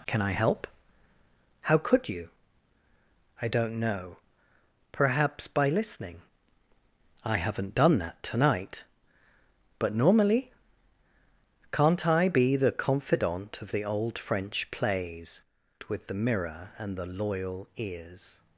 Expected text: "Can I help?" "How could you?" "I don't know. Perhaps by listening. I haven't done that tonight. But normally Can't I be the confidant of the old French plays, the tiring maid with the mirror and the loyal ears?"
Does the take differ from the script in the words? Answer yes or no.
yes